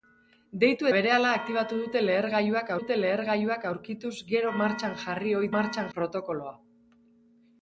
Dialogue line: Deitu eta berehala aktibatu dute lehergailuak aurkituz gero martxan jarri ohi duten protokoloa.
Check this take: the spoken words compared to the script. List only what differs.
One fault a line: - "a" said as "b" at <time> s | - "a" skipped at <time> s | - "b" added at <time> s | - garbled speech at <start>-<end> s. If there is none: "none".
- "eta" skipped at 0.9 s
- "dute lehergailuak" added at 2.8 s
- "duten" said as "martxan" at 5.6 s